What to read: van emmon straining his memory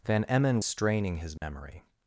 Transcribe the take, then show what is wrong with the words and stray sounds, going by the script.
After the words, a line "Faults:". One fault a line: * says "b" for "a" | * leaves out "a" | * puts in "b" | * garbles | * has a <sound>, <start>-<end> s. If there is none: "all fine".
van emmon straining his memory
Faults:
* has a dropout, 1.4-1.4 s